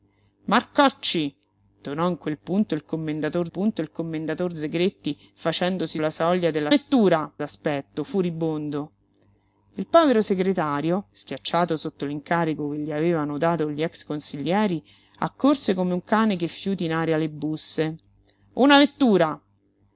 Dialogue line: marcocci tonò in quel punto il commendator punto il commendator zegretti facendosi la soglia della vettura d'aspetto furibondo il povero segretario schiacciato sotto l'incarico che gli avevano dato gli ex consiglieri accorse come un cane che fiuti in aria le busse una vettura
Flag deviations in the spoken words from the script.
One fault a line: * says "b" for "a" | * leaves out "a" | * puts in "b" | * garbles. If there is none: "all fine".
all fine